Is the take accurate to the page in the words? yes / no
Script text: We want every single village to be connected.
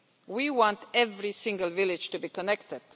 yes